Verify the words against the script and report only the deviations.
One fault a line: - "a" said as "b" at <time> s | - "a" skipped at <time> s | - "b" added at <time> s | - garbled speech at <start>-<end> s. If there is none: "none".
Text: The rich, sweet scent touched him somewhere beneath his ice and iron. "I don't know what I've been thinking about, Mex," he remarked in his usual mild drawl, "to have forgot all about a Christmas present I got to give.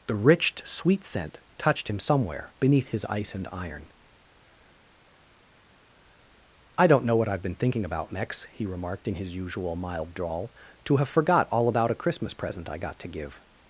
none